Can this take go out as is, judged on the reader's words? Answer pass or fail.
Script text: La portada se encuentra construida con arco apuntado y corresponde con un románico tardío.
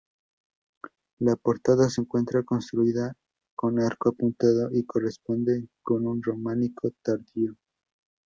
pass